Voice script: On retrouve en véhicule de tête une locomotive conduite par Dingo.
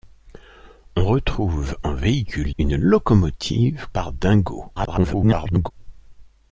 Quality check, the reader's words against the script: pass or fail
fail